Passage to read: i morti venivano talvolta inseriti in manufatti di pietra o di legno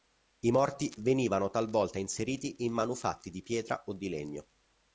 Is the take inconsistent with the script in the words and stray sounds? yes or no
no